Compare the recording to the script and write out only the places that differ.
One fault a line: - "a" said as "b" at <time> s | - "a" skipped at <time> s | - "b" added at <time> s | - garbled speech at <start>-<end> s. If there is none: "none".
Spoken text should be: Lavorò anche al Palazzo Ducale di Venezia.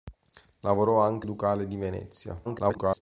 - "al Palazzo" skipped at 1.3 s
- garbled speech at 2.4-3.0 s